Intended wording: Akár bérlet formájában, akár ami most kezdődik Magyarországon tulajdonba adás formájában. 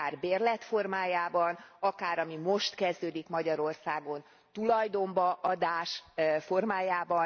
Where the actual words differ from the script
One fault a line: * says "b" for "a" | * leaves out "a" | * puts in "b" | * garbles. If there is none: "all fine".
all fine